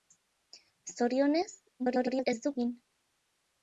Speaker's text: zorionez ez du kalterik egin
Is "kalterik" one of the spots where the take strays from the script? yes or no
yes